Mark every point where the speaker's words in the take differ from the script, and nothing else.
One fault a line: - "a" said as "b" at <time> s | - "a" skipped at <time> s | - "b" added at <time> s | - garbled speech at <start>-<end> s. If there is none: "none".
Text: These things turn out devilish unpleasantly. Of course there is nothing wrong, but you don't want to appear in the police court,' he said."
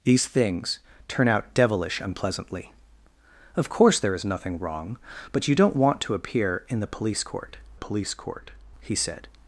- "police court" added at 7.8 s